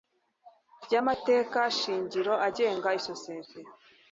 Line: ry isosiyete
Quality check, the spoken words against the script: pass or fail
fail